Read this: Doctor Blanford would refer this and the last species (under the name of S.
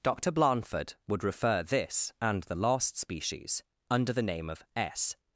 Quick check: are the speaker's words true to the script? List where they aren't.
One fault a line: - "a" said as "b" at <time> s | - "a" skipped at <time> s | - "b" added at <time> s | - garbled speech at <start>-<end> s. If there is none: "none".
none